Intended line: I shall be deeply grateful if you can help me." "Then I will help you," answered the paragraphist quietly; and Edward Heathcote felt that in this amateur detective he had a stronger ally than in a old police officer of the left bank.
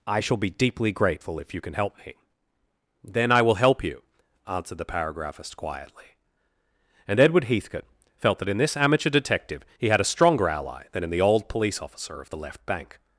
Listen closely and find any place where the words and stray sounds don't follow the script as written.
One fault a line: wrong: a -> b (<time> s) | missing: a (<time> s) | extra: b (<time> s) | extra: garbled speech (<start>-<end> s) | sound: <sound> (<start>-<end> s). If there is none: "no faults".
wrong: a -> the (11.1 s)